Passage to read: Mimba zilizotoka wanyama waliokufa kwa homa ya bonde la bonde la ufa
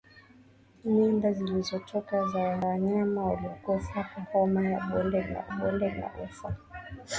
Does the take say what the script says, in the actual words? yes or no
yes